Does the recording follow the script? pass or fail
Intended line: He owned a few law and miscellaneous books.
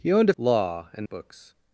fail